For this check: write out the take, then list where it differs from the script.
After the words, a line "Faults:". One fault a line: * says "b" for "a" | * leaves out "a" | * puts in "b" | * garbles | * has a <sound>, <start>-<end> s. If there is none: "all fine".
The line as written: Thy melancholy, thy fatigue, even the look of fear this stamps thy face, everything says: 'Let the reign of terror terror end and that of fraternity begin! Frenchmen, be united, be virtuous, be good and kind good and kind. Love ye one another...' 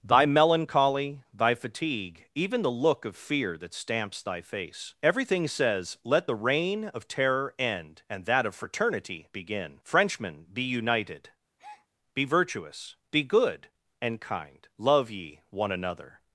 Thy melancholy, thy fatigue, even the look of fear that stamps thy face, everything says: 'Let the reign of terror end and that of fraternity begin! Frenchmen, be united, be virtuous, be good and kind. Love ye one another...'
Faults:
* says "that" for "this"
* leaves out "terror"
* has a breath, 11.6-11.9 s
* leaves out "good and kind"